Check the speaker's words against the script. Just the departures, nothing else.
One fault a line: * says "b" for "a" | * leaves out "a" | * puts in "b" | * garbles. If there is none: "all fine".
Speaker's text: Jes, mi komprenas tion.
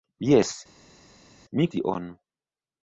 * leaves out "komprenas"